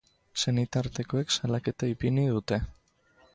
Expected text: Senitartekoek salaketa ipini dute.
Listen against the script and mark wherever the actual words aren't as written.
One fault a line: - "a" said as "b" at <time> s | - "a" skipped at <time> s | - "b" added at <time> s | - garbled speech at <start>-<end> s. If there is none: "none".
none